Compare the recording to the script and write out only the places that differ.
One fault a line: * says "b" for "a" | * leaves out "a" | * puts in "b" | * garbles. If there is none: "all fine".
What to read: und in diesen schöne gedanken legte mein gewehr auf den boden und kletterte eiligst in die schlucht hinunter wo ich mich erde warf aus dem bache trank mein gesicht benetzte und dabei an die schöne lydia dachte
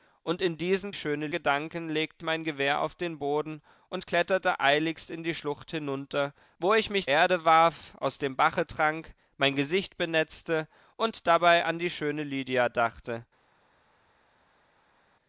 all fine